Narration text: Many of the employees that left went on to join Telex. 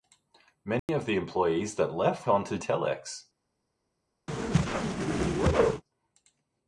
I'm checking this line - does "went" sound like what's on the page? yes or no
no